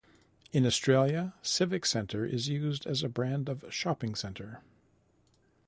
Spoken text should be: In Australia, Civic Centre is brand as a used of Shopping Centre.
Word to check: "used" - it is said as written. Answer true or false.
false